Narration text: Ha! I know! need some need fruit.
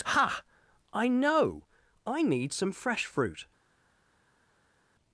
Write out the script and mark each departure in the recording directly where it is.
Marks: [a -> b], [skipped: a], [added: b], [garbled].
Ha! I know! [added: I] need some [need -> fresh] fruit.